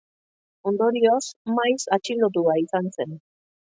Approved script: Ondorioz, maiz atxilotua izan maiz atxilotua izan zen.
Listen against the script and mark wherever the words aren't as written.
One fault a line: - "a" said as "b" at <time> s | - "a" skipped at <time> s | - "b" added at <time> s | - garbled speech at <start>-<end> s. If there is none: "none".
- "maiz atxilotua izan" skipped at 2.9 s